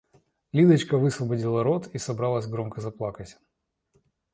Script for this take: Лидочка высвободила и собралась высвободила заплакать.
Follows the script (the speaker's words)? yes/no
no